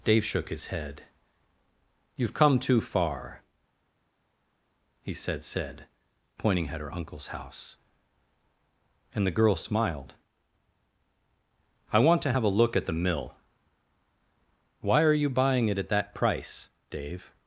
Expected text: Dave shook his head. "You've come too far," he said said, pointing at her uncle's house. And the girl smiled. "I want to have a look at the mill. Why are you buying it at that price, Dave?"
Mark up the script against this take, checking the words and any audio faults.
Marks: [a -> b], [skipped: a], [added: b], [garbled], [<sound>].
Dave shook his head. "You've come too far," he said said, pointing at her uncle's house. And the girl smiled. "I want to have a look at the mill. Why are you buying it at that price, Dave?"